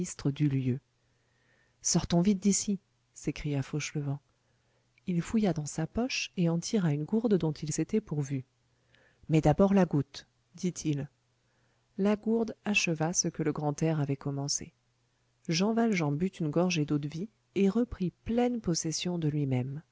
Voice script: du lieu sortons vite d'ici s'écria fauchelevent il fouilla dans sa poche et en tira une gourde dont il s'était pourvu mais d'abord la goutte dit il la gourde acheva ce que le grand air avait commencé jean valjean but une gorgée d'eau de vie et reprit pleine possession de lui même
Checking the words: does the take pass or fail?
pass